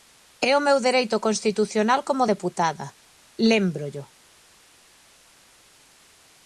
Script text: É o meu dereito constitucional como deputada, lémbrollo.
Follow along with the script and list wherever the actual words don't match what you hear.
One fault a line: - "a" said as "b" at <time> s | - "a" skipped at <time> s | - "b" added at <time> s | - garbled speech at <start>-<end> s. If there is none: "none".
none